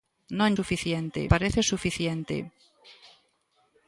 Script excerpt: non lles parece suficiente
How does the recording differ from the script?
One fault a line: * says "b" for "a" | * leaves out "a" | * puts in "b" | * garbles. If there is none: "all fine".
* says "suficiente" for "lles"